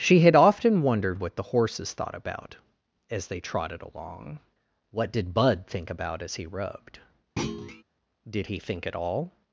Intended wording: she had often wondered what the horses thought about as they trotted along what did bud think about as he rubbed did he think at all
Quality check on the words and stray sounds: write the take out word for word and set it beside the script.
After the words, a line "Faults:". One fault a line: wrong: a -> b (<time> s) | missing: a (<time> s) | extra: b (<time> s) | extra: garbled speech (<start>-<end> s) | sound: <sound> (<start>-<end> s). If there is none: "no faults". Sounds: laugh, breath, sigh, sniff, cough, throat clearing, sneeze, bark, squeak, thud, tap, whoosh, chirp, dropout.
she had often wondered what the horses thought about as they trotted along what did bud think about as he rubbed did he think at all
Faults:
sound: thud (7.4-7.8 s)